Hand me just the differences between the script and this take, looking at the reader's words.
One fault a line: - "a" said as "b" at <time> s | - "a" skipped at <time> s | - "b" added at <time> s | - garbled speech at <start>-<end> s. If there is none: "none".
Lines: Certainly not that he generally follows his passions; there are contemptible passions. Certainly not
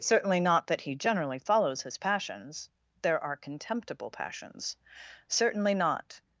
none